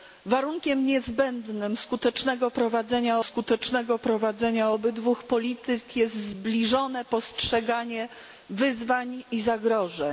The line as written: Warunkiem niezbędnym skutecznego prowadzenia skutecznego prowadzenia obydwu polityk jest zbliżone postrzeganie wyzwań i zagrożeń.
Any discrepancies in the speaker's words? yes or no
no